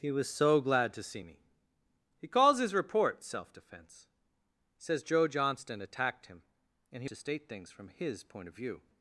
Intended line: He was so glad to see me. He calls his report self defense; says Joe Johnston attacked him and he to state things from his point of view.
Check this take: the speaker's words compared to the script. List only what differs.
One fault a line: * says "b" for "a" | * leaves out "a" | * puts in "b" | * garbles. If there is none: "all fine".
all fine